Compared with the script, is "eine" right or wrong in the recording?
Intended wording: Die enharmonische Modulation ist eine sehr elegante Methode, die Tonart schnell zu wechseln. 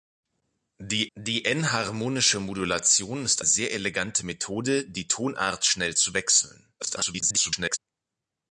wrong